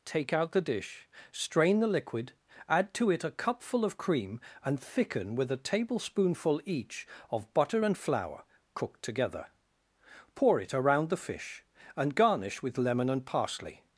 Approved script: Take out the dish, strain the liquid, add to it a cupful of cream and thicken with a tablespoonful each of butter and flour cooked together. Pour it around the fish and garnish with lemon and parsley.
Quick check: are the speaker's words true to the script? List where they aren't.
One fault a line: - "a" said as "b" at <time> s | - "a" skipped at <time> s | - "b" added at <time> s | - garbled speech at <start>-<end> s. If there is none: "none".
none